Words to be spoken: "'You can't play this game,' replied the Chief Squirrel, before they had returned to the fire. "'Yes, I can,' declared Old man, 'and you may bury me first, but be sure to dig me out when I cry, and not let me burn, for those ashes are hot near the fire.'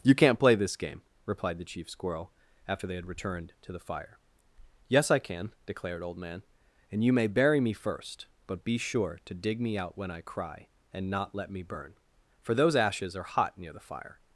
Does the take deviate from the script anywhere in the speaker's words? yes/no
yes